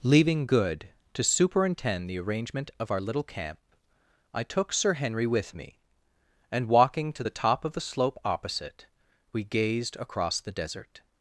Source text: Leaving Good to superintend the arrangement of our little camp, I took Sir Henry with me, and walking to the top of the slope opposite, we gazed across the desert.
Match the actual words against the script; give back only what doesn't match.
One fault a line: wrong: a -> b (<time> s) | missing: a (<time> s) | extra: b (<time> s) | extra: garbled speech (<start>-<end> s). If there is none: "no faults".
no faults